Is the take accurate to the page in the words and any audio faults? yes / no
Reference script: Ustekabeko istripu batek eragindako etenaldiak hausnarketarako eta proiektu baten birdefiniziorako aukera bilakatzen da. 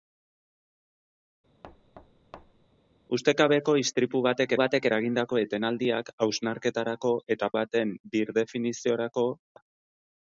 no